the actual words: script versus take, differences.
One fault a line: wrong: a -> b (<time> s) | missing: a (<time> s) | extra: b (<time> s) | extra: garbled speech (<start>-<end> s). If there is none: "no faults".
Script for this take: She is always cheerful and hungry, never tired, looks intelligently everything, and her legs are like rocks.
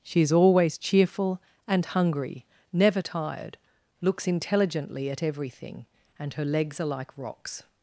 extra: at (5.1 s)